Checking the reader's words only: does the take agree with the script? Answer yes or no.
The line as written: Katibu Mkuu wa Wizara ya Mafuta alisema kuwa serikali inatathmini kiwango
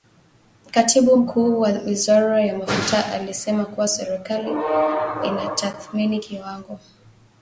yes